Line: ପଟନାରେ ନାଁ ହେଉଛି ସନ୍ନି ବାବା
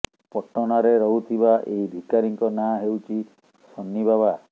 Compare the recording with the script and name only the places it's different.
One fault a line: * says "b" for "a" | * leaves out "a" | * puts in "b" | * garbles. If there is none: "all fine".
* puts in "ରହୁଥିବା ଏହି ଭିକାରୀଙ୍କ"